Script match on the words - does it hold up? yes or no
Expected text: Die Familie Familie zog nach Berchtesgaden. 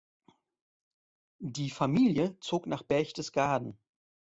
no